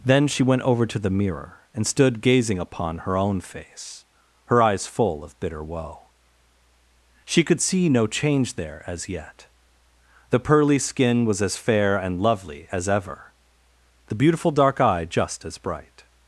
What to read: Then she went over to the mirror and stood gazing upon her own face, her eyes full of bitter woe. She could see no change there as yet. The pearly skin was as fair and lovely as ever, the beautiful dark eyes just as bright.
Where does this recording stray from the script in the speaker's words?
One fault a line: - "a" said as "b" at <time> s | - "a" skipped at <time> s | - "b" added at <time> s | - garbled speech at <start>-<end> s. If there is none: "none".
- "eyes" said as "eye" at 14.8 s